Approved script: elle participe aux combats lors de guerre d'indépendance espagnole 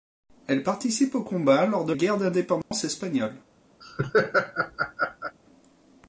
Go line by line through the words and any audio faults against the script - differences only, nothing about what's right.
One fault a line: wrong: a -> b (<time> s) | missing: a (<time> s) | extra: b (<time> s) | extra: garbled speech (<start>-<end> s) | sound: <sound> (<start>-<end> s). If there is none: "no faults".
sound: dropout (2.6-2.7 s)
sound: laugh (3.8-5.4 s)